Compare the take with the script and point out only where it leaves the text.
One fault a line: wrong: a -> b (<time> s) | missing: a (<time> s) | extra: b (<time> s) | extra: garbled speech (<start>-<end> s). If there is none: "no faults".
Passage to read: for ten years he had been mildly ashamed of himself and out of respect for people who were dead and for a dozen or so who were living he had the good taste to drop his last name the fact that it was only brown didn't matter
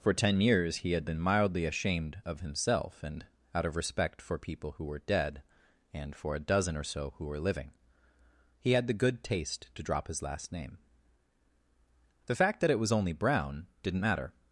no faults